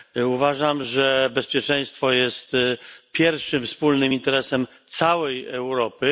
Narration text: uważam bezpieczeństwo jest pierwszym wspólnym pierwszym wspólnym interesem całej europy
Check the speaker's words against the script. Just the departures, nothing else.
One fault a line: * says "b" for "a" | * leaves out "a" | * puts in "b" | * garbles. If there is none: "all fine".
* puts in "że"
* leaves out "pierwszym wspólnym"